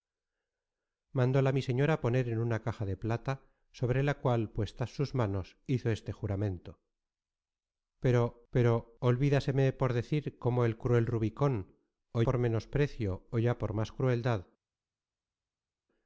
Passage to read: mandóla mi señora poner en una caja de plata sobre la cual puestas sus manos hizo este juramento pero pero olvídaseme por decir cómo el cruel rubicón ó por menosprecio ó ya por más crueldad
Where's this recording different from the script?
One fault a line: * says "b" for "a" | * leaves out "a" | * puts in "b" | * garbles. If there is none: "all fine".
all fine